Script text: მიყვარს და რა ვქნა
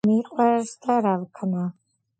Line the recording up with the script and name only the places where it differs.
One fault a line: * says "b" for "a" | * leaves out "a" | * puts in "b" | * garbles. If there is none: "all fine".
all fine